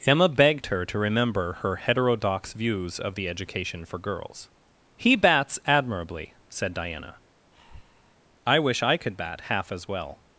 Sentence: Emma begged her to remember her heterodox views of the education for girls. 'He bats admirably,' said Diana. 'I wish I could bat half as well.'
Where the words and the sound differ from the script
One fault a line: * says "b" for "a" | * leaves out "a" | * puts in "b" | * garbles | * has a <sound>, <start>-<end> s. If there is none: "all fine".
* has a breath, 7.5-8.2 s